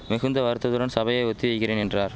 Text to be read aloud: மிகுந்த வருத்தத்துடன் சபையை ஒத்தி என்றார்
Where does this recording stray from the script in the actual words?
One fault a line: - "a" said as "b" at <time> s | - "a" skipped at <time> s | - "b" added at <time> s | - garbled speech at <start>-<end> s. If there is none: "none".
- "வைக்கிறேன்" added at 1.5 s